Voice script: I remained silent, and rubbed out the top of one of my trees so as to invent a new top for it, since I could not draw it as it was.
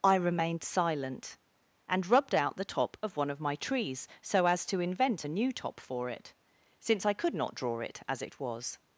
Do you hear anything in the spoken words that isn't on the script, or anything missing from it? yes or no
no